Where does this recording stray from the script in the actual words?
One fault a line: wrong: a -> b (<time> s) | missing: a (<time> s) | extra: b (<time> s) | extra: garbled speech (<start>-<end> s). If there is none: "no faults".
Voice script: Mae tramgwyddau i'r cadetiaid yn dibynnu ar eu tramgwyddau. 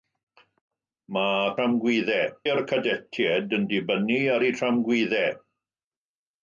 no faults